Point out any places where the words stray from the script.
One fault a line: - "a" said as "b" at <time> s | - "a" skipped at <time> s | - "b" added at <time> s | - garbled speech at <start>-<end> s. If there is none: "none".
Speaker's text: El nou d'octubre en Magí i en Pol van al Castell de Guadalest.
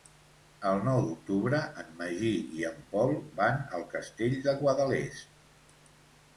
none